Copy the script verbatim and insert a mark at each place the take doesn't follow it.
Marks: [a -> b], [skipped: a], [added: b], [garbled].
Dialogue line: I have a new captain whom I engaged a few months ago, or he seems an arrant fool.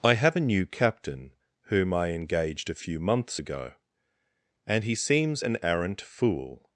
I have a new captain whom I engaged a few months ago, [or -> and] he seems an arrant fool.